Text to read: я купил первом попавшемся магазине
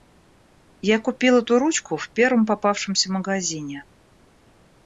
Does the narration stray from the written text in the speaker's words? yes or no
yes